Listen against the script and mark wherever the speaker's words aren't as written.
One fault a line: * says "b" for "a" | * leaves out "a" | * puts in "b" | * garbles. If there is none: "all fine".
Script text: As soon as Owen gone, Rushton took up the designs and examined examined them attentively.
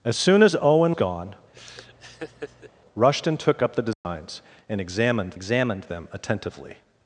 all fine